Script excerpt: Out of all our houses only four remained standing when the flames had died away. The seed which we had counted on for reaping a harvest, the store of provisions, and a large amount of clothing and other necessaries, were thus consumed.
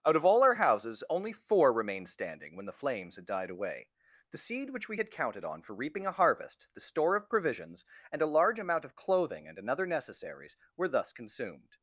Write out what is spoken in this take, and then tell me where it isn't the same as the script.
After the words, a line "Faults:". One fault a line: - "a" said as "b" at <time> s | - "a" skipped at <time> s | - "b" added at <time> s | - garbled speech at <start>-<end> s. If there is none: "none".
Out of all our houses only four remained standing when the flames had died away. The seed which we had counted on for reaping a harvest, the store of provisions, and a large amount of clothing and another necessaries, were thus consumed.
Faults:
- "other" said as "another" at 9.6 s